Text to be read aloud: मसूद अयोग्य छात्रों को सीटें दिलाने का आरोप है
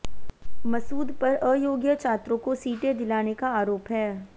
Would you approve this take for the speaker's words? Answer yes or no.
no